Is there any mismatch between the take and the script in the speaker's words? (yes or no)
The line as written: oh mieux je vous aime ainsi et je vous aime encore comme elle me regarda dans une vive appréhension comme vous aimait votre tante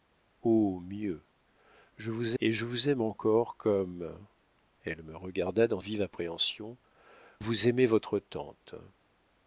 yes